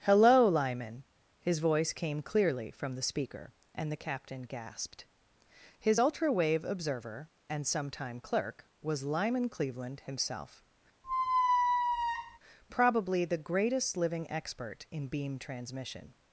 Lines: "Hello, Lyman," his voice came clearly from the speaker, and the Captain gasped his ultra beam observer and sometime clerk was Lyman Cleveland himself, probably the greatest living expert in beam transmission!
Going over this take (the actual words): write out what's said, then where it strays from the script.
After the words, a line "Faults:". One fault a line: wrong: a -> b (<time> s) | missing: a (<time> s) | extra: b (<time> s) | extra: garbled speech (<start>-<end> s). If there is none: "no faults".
"Hello, Lyman," his voice came clearly from the speaker, and the Captain gasped his ultra wave observer and sometime clerk was Lyman Cleveland himself, probably the greatest living expert in beam transmission!
Faults:
wrong: beam -> wave (6.3 s)